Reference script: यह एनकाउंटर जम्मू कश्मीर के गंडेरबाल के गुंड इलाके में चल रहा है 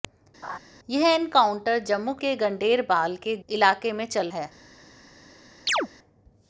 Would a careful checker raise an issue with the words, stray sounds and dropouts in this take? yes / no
yes